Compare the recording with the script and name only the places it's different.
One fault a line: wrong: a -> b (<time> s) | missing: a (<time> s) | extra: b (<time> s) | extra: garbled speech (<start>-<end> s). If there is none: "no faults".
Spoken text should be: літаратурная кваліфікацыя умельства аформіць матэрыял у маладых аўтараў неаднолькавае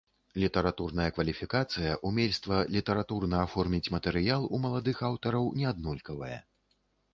extra: літаратурна (2.8 s)